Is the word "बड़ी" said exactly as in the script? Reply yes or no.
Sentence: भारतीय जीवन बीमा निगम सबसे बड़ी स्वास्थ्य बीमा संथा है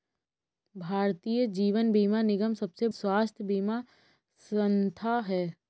no